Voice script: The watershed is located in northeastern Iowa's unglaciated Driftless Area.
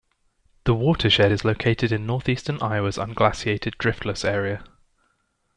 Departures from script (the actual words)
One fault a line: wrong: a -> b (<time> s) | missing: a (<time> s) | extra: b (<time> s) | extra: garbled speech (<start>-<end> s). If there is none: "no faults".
no faults